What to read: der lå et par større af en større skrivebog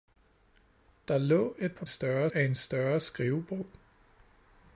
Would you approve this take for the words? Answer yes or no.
yes